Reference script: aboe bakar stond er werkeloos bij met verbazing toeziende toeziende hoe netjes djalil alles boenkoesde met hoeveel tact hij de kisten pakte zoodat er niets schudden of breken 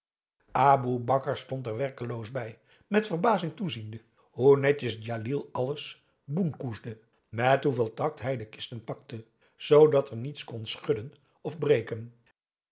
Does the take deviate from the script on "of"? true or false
false